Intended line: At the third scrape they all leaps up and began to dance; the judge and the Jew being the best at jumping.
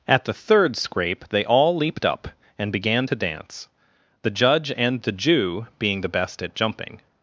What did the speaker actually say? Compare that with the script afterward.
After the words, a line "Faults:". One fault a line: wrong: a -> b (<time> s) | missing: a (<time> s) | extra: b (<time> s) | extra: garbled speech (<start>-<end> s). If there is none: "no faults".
At the third scrape they all leaped up and began to dance; the judge and the Jew being the best at jumping.
Faults:
wrong: leaps -> leaped (1.8 s)